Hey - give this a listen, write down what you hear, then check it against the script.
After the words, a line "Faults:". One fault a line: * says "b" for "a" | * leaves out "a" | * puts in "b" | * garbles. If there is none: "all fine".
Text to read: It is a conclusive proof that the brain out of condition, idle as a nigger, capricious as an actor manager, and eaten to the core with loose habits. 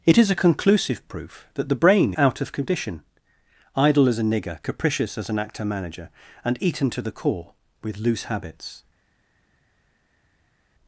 It is a conclusive proof that the brain out of condition, idle as a nigger, capricious as an actor manager, and eaten to the core with loose habits.
Faults:
all fine